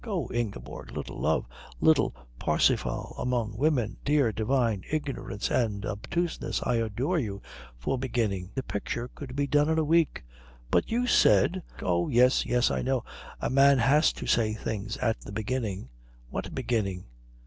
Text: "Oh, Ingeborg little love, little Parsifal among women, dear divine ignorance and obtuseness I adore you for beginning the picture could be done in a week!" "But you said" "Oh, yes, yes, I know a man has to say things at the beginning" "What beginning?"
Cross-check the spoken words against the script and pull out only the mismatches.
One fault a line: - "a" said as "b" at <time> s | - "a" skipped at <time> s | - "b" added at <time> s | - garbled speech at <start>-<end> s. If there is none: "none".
none